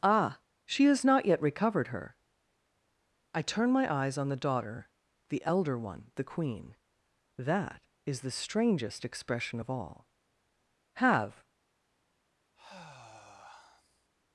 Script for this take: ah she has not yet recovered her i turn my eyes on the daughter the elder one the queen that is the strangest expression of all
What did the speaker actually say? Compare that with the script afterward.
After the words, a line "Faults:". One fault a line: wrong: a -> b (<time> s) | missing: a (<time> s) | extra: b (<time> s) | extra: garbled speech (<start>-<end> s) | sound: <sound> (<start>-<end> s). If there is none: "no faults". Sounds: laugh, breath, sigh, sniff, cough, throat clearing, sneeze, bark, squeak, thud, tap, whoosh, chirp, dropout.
ah she has not yet recovered her i turn my eyes on the daughter the elder one the queen that is the strangest expression of all have
Faults:
extra: have (10.9 s)
sound: sigh (12.5-14.1 s)